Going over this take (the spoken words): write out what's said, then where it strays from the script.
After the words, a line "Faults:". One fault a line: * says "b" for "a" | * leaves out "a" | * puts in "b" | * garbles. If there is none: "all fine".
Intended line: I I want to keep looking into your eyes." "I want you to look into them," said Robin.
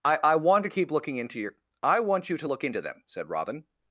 I I want to keep looking into your." "I want you to look into them," said Robin.
Faults:
* leaves out "eyes"